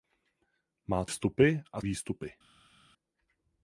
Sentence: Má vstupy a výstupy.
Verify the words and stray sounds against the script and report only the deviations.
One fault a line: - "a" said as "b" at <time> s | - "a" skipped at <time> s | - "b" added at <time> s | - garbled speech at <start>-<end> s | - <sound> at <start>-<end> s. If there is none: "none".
none